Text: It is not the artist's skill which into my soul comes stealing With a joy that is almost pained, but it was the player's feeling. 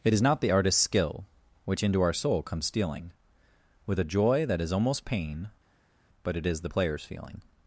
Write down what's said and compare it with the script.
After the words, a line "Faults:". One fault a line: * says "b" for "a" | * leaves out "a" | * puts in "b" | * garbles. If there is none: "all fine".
It is not the artist's skill which into our soul comes stealing With a joy that is almost pain, but it is the player's feeling.
Faults:
* says "our" for "my"
* says "pain" for "pained"
* says "is" for "was"